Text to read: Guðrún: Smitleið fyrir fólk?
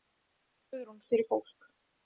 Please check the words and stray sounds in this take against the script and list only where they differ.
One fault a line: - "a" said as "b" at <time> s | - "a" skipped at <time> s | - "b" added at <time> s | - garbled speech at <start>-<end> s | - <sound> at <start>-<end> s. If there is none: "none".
- "Smitleið" skipped at 1.0 s